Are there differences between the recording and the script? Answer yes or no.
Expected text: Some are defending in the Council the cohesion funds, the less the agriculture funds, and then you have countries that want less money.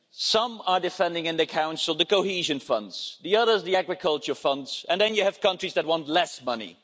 yes